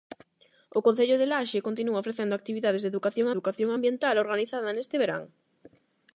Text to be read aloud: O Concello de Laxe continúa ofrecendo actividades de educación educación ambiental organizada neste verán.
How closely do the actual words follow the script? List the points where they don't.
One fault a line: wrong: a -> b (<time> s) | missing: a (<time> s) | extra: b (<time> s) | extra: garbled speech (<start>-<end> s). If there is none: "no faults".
no faults